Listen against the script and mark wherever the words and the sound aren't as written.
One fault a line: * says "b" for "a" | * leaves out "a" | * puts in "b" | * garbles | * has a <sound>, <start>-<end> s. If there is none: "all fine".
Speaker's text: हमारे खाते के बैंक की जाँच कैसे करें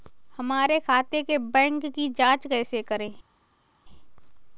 all fine